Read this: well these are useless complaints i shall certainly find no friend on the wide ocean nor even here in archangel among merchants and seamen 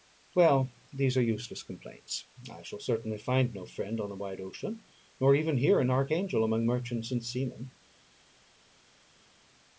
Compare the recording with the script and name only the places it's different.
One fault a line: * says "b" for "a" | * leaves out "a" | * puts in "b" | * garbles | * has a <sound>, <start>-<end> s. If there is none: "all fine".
all fine